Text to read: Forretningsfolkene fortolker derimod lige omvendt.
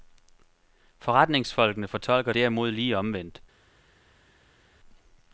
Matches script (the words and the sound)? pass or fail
pass